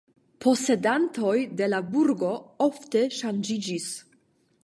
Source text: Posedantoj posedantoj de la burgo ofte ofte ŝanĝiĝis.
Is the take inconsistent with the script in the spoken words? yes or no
yes